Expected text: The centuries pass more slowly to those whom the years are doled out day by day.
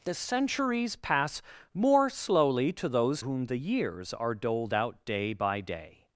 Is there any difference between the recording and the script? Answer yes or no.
no